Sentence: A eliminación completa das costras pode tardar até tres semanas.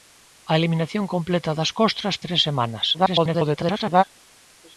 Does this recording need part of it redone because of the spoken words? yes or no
yes